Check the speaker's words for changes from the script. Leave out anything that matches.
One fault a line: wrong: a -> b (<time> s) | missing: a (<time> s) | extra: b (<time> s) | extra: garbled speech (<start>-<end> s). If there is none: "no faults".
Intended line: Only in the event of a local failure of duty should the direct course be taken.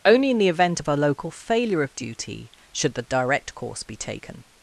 no faults